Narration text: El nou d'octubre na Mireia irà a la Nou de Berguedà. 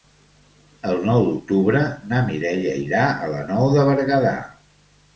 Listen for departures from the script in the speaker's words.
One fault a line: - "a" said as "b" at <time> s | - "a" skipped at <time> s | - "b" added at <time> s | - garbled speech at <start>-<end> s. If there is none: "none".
none